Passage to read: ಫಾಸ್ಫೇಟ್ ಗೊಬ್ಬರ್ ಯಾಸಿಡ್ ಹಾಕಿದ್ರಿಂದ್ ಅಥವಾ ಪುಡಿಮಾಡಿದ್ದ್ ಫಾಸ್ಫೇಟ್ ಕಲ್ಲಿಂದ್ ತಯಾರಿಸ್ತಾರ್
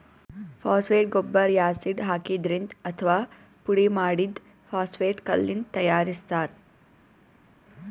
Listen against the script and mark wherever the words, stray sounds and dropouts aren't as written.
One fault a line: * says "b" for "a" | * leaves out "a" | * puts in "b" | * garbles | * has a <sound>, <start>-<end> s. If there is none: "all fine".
all fine